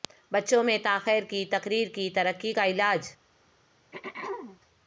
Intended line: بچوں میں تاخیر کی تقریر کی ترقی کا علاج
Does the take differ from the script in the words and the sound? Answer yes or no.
yes